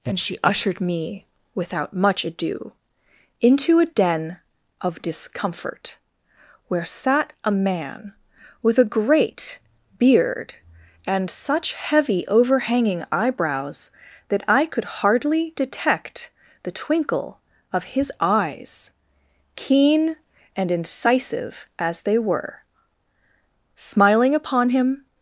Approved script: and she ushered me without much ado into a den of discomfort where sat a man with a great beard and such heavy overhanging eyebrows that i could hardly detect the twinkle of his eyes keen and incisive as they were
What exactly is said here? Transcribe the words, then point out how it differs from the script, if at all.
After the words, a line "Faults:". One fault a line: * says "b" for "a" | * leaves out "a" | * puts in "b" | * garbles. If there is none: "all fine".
and she ushered me without much ado into a den of discomfort where sat a man with a great beard and such heavy overhanging eyebrows that i could hardly detect the twinkle of his eyes keen and incisive as they were smiling upon him
Faults:
* puts in "smiling upon him"